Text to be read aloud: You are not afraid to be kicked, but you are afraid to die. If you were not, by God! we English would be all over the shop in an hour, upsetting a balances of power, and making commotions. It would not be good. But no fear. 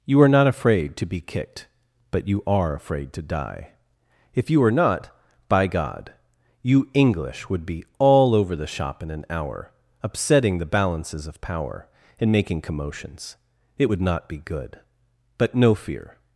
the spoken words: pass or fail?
fail